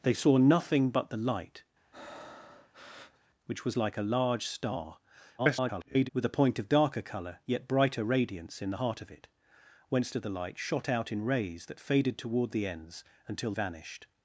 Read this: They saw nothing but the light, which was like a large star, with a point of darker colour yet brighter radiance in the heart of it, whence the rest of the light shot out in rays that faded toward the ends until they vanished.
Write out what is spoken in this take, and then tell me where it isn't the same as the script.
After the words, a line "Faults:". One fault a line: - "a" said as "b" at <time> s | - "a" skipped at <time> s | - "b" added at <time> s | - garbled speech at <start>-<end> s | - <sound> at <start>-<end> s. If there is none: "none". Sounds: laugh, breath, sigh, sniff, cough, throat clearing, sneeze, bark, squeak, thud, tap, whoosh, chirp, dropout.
They saw nothing but the light, which was like a large star, [garbled] with a point of darker colour yet brighter radiance in the heart of it, whence of the light shot out in rays that faded toward the ends until vanished.
Faults:
- breath at 1.9-3.3 s
- garbled speech at 5.4-6.1 s
- "the rest" skipped at 10.1 s
- "they" skipped at 13.5 s